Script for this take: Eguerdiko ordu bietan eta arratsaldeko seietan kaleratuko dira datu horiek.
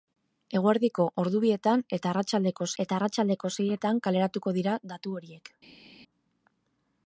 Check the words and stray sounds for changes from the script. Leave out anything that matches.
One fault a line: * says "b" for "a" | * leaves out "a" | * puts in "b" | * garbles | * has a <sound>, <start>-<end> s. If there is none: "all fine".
* puts in "eta arratsaldeko"